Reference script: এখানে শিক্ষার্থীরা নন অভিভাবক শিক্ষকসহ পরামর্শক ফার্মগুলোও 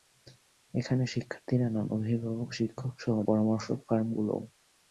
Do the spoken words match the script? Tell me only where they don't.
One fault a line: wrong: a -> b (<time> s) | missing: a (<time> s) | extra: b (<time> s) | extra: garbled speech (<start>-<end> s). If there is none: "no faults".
no faults